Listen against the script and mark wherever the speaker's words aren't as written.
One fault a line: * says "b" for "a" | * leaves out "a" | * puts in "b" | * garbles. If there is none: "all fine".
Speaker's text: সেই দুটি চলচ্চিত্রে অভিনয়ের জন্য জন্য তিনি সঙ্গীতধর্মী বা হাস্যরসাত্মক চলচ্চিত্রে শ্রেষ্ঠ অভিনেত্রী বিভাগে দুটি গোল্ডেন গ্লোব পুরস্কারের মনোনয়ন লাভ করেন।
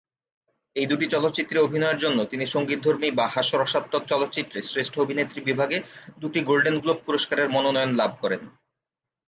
* says "এই" for "সেই"
* leaves out "জন্য"